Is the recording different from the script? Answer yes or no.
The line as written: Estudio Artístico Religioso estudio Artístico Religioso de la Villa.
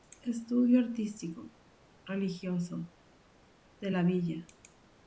yes